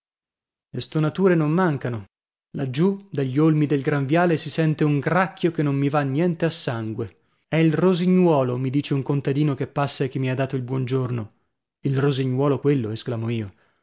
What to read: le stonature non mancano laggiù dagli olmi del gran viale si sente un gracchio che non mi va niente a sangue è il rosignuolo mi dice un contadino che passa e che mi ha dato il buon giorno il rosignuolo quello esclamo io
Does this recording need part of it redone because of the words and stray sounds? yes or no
no